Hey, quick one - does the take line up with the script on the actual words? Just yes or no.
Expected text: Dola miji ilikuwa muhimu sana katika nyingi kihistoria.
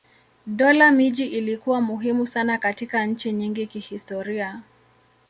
no